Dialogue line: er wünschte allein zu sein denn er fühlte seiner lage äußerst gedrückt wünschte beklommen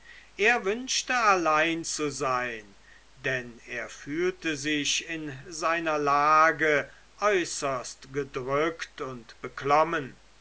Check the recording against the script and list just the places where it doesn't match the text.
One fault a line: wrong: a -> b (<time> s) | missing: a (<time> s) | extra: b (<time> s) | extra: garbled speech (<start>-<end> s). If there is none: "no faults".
extra: sich in (4.6 s)
wrong: wünschte -> und (9.0 s)